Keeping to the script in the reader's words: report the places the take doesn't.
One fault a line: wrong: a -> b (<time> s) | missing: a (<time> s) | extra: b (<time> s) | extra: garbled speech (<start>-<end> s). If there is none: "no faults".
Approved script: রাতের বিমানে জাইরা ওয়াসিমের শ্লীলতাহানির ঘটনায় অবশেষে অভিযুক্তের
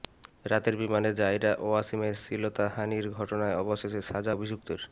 extra: সাজা (4.0 s)